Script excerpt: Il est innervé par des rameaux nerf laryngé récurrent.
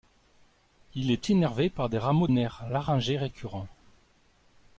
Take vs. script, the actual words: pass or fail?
pass